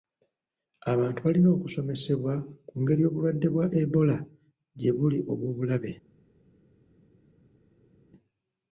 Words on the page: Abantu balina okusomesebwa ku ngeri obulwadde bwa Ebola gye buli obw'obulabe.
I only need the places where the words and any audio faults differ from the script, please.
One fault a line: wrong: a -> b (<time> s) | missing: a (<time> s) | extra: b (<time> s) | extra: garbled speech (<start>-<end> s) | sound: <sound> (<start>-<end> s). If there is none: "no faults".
no faults